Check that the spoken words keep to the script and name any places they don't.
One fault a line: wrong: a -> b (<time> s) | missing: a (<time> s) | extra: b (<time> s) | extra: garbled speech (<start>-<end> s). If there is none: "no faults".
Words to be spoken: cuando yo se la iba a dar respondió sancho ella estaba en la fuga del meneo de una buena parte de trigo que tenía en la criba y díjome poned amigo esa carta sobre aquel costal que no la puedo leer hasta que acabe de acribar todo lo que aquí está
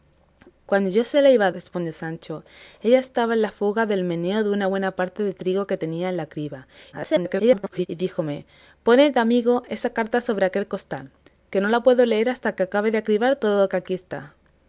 missing: dar (1.5 s)
extra: garbled speech (6.9-7.9 s)